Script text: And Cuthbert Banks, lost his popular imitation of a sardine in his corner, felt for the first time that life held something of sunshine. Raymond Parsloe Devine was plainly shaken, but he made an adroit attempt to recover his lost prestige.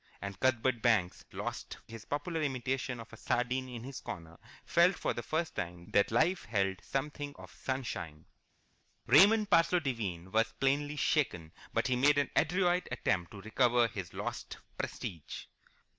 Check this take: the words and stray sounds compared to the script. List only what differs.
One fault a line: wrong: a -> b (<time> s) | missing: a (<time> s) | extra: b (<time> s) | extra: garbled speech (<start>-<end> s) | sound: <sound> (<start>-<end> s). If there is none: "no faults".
no faults